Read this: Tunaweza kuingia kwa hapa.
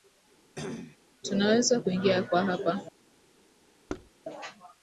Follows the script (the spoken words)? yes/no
yes